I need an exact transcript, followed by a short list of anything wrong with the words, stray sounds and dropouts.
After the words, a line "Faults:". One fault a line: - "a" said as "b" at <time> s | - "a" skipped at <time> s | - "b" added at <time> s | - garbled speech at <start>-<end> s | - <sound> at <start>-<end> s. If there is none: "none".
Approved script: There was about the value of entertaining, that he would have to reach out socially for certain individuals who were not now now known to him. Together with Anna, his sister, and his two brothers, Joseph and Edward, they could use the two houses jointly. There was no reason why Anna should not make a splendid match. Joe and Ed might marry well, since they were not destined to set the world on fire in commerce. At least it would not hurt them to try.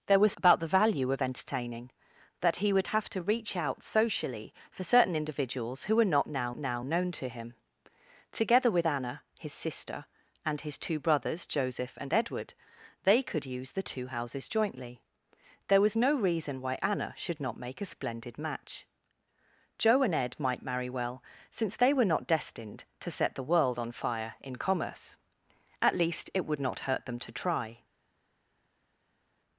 There was about the value of entertaining, that he would have to reach out socially for certain individuals who were not now now known to him. Together with Anna, his sister, and his two brothers, Joseph and Edward, they could use the two houses jointly. There was no reason why Anna should not make a splendid match. Joe and Ed might marry well, since they were not destined to set the world on fire in commerce. At least it would not hurt them to try.
Faults:
none